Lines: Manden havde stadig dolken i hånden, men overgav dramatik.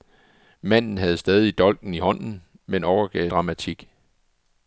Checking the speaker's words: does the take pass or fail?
pass